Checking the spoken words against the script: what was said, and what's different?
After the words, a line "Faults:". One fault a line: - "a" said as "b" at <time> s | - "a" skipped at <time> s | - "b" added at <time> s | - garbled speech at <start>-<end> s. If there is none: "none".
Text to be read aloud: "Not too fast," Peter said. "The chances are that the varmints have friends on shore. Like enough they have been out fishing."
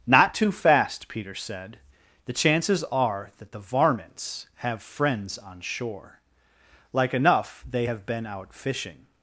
"Not too fast," Peter said. "The chances are that the varmints have friends on shore. Like enough they have been out fishing."
Faults:
none